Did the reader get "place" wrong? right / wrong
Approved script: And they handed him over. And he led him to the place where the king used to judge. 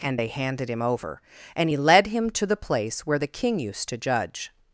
right